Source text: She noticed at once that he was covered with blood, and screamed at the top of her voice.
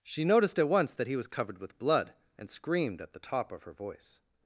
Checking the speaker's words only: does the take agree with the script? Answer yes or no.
yes